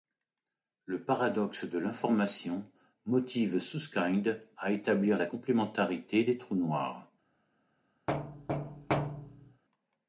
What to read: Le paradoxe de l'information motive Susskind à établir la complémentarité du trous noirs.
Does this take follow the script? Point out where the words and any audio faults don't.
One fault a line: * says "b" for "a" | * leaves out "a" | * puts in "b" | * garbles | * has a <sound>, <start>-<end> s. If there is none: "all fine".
* says "des" for "du"
* has a thud, 8.1-9.6 s